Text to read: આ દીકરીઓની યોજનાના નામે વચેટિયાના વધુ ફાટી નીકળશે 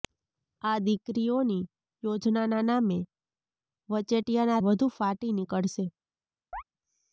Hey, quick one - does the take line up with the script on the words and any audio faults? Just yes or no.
no